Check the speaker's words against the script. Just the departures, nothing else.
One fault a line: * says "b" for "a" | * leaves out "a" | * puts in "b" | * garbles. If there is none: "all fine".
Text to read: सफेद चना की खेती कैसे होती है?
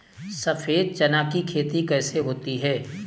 all fine